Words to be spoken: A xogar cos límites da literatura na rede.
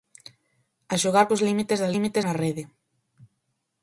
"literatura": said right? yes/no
no